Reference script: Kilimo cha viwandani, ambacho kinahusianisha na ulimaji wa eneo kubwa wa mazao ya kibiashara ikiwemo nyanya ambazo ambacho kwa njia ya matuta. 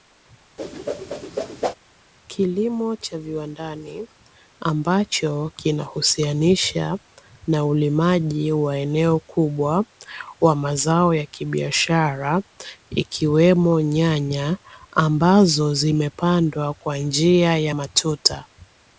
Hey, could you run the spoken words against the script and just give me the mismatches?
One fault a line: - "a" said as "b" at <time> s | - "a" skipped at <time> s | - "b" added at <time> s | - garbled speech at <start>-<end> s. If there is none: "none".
- "ambacho" said as "zimepandwa" at 15.7 s